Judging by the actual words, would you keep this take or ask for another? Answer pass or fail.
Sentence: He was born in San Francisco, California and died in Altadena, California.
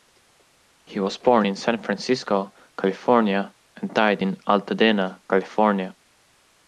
pass